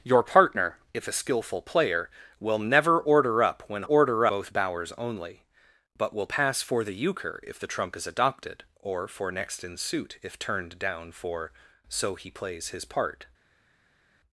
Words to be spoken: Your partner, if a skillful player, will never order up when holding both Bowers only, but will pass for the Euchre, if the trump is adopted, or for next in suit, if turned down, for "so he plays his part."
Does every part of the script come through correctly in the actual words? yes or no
no